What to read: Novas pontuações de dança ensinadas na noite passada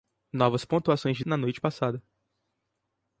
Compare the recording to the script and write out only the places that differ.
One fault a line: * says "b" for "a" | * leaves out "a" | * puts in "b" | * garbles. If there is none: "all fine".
* leaves out "dança ensinadas"